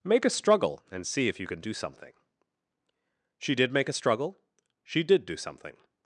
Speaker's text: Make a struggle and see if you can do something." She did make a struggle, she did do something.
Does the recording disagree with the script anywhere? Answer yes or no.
no